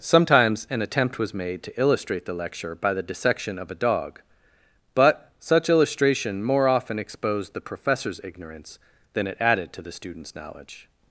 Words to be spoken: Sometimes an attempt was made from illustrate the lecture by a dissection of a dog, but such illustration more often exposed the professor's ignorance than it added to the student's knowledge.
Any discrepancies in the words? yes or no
yes